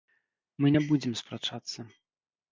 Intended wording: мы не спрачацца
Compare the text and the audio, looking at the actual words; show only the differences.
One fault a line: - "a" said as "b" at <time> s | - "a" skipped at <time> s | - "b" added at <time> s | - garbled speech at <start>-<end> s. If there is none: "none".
- "будзем" added at 0.9 s